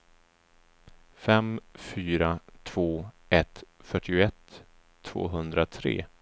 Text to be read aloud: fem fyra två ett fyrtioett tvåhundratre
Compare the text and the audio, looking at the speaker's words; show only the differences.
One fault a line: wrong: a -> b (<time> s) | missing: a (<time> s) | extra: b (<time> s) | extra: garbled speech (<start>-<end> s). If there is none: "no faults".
no faults